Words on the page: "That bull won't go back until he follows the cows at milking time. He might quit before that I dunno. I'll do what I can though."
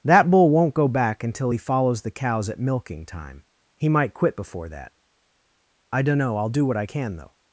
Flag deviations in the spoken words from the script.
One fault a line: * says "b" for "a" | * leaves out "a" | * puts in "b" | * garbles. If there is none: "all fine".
all fine